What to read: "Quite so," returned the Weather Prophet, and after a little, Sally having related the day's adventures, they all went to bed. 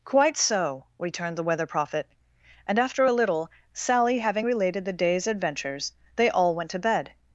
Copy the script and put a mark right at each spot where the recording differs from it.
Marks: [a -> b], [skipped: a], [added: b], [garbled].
"Quite so," returned the Weather Prophet, and after a little, Sally having related the day's adventures, they all went to bed.